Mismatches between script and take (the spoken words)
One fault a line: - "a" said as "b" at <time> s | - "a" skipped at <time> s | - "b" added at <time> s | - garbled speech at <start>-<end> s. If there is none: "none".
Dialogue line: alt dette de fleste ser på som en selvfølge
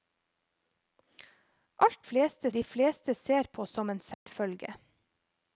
- "dette" said as "fleste" at 2.0 s